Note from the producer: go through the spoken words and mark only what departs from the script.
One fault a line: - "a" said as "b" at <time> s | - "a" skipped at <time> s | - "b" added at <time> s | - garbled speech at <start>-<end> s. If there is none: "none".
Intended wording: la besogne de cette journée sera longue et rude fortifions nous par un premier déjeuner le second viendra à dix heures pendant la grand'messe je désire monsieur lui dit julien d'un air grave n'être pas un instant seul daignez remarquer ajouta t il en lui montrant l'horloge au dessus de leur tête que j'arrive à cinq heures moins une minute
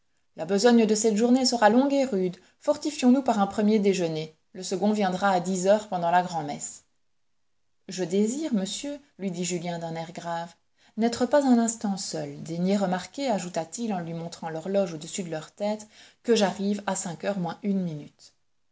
none